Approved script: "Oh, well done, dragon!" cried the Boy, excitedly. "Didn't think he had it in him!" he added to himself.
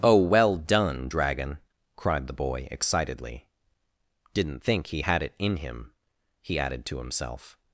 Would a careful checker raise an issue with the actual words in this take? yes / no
no